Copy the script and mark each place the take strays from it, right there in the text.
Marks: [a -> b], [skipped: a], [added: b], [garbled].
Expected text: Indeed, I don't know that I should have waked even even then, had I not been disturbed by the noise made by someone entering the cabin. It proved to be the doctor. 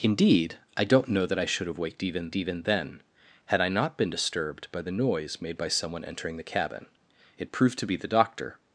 Indeed, I don't know that I should have waked even even then, had I not been disturbed by the noise made by someone entering the cabin. It proved to be the doctor.